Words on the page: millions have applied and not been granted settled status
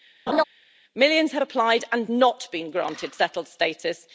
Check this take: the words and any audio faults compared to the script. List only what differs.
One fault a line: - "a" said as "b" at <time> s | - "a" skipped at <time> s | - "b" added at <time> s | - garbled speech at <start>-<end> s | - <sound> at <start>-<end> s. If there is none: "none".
- laugh at 0.3-0.4 s